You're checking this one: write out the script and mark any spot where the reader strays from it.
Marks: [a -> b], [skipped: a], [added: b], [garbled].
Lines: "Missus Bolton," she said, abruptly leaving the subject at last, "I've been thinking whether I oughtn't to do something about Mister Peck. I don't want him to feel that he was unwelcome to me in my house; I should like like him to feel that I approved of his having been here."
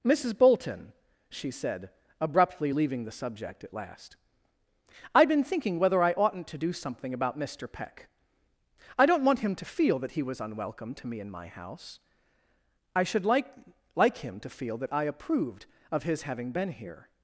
"Missus Bolton," she said, abruptly leaving the subject at last, "I've been thinking whether I oughtn't to do something about Mister Peck. I don't want him to feel that he was unwelcome to me in my house; I should like like him to feel that I approved of his having been here."